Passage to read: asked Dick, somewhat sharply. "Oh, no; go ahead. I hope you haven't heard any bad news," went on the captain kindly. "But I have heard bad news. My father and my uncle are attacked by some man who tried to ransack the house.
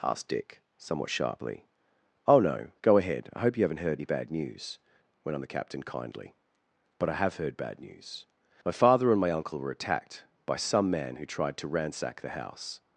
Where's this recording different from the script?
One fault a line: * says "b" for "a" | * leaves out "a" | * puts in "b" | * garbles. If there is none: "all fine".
* says "were" for "are"